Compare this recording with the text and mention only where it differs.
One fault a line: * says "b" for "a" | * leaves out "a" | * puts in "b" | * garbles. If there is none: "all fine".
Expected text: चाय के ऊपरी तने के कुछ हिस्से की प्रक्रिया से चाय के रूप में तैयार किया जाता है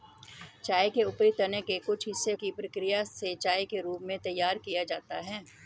all fine